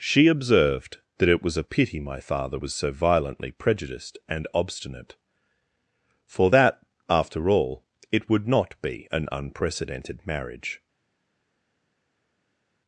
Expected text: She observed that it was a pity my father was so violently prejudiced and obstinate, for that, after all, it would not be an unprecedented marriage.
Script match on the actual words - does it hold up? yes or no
yes